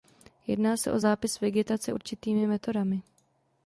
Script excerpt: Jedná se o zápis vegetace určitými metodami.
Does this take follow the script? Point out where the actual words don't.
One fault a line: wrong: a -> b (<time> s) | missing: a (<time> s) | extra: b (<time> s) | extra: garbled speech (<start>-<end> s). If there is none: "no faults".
no faults